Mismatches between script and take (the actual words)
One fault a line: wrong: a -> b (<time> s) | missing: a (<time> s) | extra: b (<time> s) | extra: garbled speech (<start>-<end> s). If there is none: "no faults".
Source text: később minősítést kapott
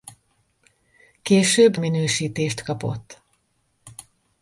no faults